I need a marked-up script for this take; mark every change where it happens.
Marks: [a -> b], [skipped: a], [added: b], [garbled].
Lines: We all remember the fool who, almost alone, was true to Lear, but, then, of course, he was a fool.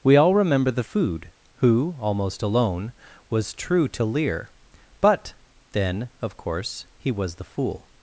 We all remember the [fool -> food] who, almost alone, was true to Lear, but, then, of course, he was [a -> the] fool.